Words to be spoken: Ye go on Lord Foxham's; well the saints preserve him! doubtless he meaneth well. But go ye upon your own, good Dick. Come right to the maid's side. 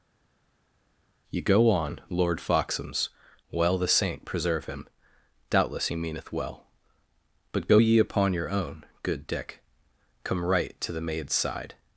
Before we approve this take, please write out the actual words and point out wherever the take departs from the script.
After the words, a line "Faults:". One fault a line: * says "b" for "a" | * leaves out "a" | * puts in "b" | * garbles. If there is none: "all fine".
Ye go on Lord Foxham's; well the saint preserve him! doubtless he meaneth well. But go ye upon your own, good Dick. Come right to the maid's side.
Faults:
* says "saint" for "saints"